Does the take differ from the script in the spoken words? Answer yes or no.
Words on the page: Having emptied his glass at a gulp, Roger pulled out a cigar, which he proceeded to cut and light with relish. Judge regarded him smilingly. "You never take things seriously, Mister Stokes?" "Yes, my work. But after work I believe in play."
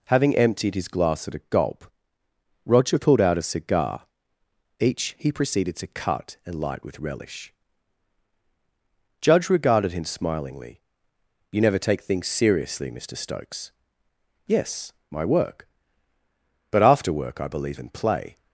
yes